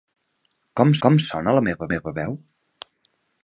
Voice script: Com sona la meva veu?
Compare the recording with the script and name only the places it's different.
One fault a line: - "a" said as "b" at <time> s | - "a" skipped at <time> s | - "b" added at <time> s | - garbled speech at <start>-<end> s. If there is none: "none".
- "com" added at 1.1 s
- "meva" added at 1.9 s